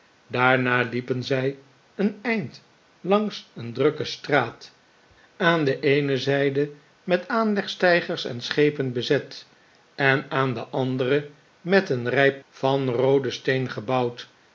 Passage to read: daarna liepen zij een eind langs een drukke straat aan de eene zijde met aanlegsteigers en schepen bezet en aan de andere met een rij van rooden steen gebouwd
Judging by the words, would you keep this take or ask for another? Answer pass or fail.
pass